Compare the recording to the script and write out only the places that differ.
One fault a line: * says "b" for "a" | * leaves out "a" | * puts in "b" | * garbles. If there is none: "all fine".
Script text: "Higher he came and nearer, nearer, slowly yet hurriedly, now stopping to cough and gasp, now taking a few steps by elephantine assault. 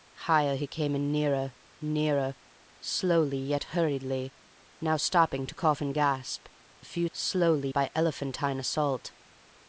* leaves out "now taking"
* says "slowly" for "steps"